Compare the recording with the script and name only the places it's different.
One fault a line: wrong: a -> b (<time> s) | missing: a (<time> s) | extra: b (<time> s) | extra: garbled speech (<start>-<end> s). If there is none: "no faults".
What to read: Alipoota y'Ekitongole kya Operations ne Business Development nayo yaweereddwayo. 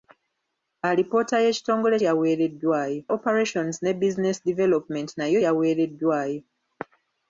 wrong: kya -> yaweereddwayo (2.1 s)